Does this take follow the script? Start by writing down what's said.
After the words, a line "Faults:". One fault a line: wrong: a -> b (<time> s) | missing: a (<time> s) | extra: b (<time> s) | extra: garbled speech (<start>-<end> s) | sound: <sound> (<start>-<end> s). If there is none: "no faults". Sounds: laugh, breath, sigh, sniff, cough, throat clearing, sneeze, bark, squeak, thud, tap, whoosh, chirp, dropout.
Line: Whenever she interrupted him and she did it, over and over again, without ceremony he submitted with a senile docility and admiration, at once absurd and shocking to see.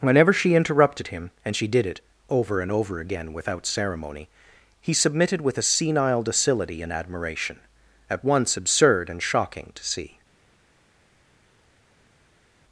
Whenever she interrupted him and she did it, over and over again, without ceremony he submitted with a senile docility and admiration, at once absurd and shocking to see.
Faults:
no faults